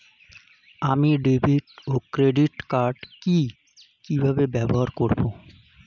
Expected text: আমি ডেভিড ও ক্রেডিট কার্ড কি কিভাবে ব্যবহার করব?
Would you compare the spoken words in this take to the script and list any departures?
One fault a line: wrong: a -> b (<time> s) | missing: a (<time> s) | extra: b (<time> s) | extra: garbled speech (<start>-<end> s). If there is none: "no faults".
no faults